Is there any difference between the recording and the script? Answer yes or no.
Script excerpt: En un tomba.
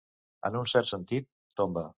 yes